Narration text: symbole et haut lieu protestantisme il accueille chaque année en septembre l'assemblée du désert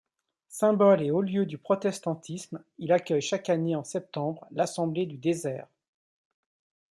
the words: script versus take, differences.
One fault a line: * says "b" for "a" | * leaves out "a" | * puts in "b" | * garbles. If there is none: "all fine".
* puts in "du"